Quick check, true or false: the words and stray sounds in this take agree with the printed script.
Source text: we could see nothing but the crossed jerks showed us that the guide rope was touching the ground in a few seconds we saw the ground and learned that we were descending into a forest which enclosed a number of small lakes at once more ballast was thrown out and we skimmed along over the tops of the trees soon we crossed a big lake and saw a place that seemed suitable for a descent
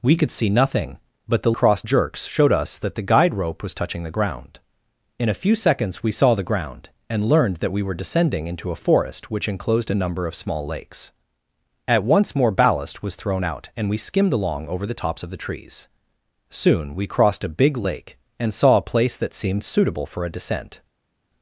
true